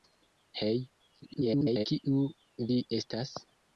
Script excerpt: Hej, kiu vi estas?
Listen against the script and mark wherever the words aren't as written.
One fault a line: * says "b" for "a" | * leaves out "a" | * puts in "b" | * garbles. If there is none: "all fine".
* garbles